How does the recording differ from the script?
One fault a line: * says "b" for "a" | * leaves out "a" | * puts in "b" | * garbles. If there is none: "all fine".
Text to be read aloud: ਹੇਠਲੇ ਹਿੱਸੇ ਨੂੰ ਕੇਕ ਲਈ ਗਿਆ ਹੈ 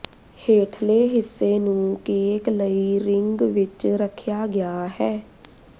* puts in "ਰਿੰਗ ਵਿੱਚ ਰੱਖਿਆ"